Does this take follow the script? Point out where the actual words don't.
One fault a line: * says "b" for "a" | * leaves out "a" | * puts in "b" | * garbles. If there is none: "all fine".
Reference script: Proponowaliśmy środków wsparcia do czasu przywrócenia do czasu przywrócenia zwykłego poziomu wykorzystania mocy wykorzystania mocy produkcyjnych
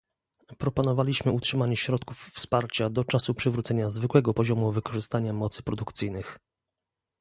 * puts in "utrzymanie"
* leaves out "do czasu przywrócenia"
* leaves out "wykorzystania mocy"